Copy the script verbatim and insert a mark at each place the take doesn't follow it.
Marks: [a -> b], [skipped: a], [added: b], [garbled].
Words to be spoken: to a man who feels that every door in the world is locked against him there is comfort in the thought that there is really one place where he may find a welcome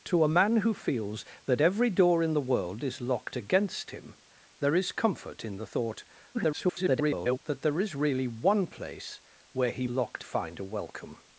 to a man who feels that every door in the world is locked against him there is comfort in the thought [garbled] that there is really one place where he [may -> locked] find a welcome